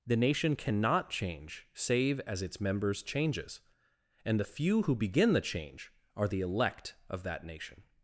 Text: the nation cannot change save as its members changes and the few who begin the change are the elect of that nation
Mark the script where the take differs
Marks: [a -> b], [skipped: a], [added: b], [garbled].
the nation cannot change save as its members changes and the few who begin the change are the elect of that nation